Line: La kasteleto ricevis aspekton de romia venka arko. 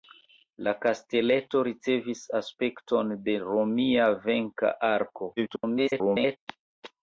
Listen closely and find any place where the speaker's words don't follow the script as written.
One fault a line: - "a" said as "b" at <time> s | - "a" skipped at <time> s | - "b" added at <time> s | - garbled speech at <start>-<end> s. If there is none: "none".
- garbled speech at 5.4-6.4 s